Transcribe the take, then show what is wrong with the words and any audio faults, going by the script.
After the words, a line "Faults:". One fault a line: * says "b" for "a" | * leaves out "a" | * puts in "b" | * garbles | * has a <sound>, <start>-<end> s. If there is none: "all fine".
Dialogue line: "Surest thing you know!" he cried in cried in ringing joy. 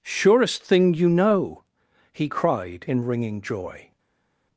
"Surest thing you know!" he cried in ringing joy.
Faults:
* leaves out "cried in"